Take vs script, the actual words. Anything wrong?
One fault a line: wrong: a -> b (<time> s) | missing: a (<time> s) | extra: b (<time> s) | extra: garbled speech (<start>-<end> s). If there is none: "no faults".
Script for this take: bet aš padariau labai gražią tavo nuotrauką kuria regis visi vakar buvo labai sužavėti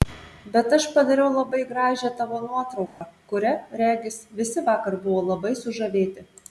no faults